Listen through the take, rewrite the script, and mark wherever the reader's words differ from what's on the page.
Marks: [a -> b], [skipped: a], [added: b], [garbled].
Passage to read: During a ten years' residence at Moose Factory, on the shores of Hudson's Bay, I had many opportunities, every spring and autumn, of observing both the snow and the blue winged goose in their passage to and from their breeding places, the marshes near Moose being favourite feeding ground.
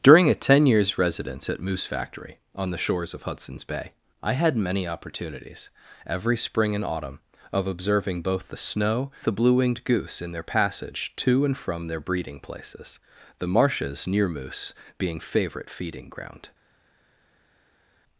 During a ten years' residence at Moose Factory, on the shores of Hudson's Bay, I had many opportunities, every spring and autumn, of observing both the snow [skipped: and] the blue winged goose in their passage to and from their breeding places, the marshes near Moose being favourite feeding ground.